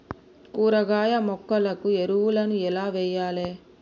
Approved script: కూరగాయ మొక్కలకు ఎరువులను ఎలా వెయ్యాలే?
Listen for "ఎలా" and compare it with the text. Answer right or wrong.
right